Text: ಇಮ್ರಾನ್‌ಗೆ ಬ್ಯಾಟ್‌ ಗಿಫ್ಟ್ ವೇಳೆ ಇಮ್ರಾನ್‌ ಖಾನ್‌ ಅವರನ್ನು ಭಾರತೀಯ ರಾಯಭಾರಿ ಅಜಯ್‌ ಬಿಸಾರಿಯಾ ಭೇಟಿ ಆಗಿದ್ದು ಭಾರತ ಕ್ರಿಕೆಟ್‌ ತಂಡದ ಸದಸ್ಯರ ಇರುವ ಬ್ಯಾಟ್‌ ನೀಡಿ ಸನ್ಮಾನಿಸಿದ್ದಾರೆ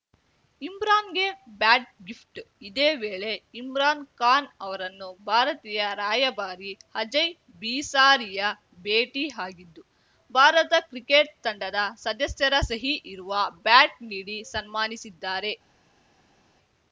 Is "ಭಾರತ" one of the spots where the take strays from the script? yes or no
no